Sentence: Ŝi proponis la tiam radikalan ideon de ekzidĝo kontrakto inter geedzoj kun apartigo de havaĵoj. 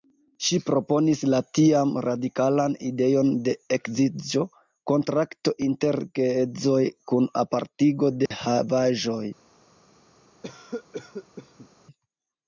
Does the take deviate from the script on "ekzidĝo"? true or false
false